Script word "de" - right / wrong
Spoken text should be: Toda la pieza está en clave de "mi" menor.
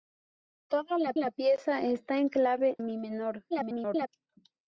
wrong